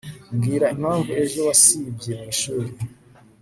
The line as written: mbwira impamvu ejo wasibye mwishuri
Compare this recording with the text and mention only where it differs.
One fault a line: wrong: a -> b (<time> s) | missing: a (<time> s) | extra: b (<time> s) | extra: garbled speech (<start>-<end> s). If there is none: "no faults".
no faults